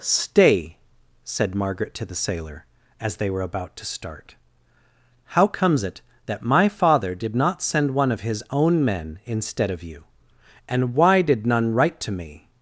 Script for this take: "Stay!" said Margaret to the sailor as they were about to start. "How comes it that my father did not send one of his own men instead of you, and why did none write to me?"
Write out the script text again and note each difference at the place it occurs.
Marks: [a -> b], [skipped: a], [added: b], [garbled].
"Stay!" said Margaret to the sailor as they were about to start. "How comes it that my father did not send one of his own men instead of you, and why did none write to me?"